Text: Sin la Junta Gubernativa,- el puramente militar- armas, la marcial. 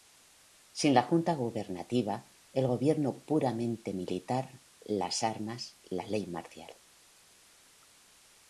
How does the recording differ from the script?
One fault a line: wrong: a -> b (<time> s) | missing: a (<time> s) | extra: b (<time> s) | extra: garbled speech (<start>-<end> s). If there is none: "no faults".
extra: gobierno (2.7 s)
extra: las (4.8 s)
extra: ley (6.1 s)